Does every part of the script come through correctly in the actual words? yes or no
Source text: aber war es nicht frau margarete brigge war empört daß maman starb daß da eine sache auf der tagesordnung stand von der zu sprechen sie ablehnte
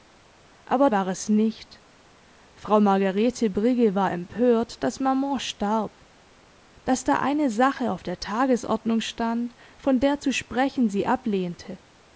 yes